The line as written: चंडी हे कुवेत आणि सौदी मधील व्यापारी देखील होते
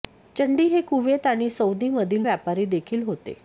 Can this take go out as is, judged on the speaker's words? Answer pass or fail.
pass